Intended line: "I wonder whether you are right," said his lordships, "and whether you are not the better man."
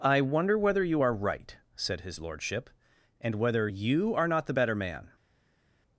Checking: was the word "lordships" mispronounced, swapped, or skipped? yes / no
yes